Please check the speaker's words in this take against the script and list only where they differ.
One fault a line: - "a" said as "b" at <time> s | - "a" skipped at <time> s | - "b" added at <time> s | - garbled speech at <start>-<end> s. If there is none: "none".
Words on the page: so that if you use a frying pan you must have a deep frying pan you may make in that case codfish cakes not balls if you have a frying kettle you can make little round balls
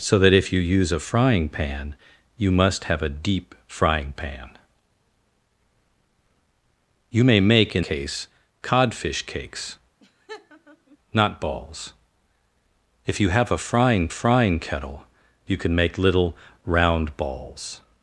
- "that" skipped at 7.8 s
- "frying" added at 14.1 s